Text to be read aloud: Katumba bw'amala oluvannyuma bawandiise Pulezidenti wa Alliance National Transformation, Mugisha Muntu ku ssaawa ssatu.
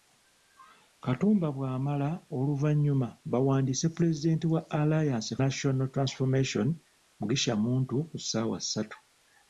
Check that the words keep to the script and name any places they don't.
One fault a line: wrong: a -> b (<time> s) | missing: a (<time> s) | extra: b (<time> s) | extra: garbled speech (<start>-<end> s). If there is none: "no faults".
no faults